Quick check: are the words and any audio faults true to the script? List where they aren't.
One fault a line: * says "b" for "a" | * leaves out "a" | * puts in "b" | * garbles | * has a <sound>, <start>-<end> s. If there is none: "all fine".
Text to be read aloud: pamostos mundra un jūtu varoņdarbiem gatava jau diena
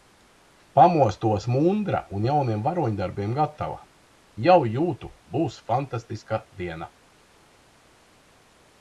* says "jauniem" for "jūtu"
* puts in "jūtu būs fantastiska"